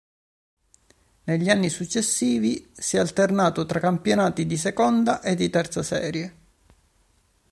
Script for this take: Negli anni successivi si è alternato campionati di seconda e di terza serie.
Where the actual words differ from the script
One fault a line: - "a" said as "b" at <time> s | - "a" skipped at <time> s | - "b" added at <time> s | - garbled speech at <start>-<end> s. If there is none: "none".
- "tra" added at 3.7 s